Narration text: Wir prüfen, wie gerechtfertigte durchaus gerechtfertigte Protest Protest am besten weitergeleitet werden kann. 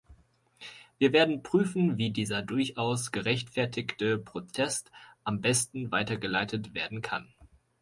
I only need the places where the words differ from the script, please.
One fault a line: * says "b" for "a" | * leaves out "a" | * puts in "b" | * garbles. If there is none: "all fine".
* puts in "werden"
* says "dieser" for "gerechtfertigte"
* leaves out "Protest"